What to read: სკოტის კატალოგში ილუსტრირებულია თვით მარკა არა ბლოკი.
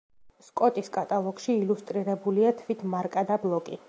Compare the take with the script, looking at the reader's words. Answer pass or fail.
pass